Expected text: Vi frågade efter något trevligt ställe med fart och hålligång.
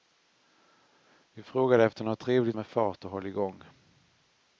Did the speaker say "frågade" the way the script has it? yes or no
yes